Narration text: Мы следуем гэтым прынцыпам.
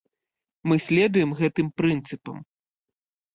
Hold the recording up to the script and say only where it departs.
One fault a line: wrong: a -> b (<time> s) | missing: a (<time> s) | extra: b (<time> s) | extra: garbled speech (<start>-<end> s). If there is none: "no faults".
no faults